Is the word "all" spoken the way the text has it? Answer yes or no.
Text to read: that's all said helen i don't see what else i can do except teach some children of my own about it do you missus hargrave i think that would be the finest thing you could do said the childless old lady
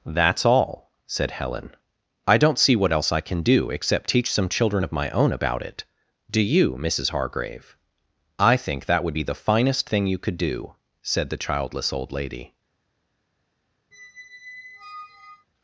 yes